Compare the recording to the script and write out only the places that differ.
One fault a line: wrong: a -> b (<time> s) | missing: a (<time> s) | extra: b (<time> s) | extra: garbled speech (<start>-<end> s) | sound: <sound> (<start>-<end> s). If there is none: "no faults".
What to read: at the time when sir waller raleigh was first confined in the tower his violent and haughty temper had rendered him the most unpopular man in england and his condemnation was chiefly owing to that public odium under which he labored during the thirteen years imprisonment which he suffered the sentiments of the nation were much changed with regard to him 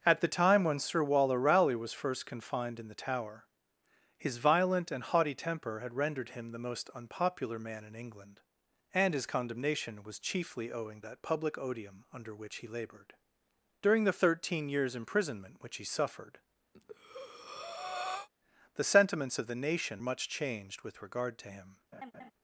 missing: to (11.0 s)
sound: breath (16.7-18.3 s)
missing: were (20.0 s)
sound: laugh (21.9-22.3 s)